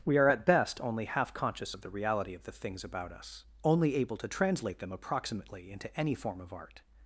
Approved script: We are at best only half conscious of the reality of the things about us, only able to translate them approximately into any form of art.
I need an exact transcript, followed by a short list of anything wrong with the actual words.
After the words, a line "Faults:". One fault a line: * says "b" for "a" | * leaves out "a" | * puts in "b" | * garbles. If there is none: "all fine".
We are at best only half conscious of the reality of the things about us, only able to translate them approximately into any form of art.
Faults:
all fine